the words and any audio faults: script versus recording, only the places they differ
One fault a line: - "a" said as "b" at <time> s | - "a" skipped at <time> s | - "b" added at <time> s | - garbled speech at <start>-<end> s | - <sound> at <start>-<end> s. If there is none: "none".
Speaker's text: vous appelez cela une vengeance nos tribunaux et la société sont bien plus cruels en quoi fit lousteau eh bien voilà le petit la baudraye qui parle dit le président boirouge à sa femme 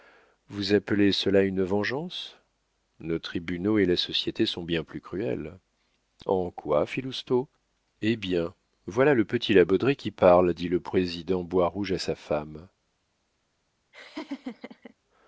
- laugh at 13.9-14.9 s